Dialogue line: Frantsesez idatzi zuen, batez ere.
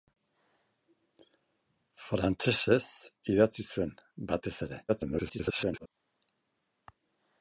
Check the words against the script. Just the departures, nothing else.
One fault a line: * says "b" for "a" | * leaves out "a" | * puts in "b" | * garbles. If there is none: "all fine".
* garbles